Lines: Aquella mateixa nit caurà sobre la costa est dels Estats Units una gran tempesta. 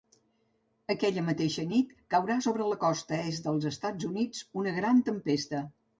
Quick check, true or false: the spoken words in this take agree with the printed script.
true